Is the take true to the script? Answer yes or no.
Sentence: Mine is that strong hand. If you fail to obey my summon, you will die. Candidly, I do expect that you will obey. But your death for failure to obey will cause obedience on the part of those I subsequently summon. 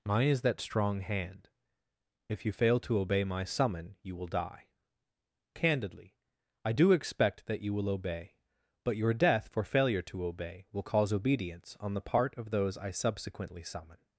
yes